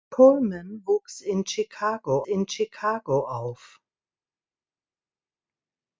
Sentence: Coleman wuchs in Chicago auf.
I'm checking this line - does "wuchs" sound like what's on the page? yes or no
yes